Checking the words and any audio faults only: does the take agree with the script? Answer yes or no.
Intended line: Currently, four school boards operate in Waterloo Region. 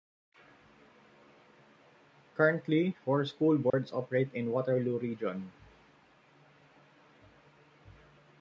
no